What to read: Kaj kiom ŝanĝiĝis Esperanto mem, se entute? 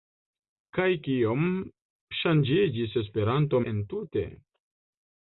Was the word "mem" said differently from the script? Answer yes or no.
yes